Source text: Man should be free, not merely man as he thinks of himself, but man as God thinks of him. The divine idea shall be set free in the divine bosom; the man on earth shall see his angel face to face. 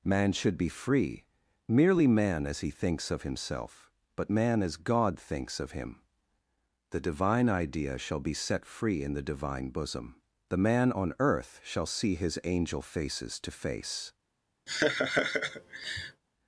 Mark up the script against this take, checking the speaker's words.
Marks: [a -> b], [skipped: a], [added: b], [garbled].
Man should be free, [skipped: not] merely man as he thinks of himself, but man as God thinks of him. The divine idea shall be set free in the divine bosom; the man on earth shall see his angel [face -> faces] to face.